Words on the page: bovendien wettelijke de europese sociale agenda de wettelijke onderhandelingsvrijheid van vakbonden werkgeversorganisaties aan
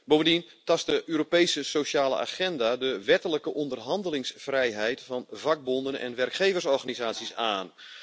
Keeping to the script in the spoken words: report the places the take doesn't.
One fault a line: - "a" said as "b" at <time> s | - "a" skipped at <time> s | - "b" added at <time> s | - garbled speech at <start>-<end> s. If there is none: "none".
- "wettelijke" said as "tast" at 0.6 s
- "en" added at 6.0 s